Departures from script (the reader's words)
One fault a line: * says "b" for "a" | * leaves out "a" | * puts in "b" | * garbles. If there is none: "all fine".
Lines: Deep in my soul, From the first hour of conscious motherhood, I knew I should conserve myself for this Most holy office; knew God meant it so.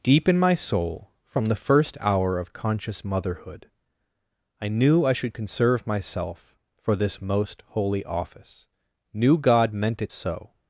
all fine